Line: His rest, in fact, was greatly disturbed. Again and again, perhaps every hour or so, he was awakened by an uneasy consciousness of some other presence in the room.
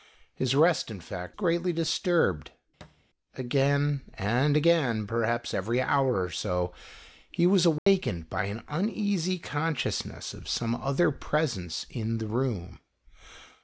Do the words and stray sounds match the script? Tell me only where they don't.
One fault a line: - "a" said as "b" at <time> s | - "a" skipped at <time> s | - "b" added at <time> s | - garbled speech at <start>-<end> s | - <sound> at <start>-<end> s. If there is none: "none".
- "was" skipped at 1.4 s
- thud at 2.8-3.1 s
- dropout at 7.8-7.9 s